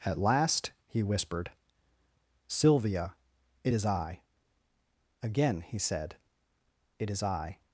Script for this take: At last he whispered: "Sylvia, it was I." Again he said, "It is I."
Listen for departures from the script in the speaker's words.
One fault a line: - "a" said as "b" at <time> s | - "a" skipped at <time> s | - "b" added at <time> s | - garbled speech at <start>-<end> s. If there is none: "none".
- "was" said as "is" at 3.7 s